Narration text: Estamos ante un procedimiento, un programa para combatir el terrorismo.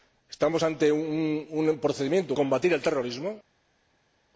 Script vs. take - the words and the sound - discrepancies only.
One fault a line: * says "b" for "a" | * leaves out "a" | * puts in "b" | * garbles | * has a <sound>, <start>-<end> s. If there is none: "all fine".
* leaves out "un programa para"